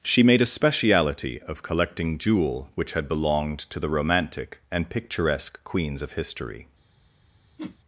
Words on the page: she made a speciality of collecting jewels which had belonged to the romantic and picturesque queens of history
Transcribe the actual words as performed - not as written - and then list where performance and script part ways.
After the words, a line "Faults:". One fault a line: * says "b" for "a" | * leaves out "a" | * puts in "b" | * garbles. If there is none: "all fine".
she made a speciality of collecting jewel which had belonged to the romantic and picturesque queens of history
Faults:
* says "jewel" for "jewels"